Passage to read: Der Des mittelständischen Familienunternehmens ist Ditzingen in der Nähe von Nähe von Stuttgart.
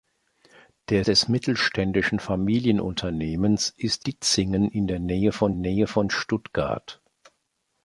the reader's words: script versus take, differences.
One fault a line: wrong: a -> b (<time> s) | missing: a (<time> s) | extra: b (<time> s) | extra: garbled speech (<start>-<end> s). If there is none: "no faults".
no faults